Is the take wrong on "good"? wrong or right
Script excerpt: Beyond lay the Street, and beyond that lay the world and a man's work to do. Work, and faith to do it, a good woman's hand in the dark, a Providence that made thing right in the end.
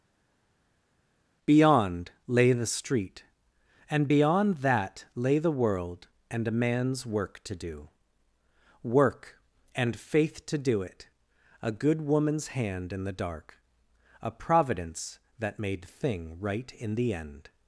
right